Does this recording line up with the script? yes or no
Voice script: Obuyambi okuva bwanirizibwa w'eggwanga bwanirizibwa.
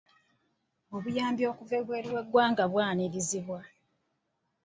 no